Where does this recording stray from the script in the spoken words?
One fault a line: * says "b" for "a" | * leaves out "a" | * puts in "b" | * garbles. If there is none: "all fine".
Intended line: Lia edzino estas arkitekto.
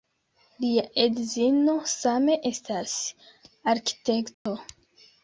* puts in "same"